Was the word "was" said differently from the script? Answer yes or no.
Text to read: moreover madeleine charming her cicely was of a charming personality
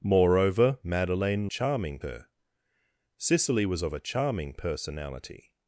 no